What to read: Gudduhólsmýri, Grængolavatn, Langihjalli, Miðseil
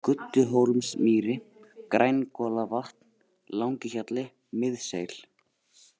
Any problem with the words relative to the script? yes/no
no